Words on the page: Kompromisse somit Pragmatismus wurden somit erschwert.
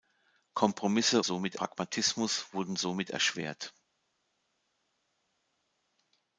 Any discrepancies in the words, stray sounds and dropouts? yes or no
no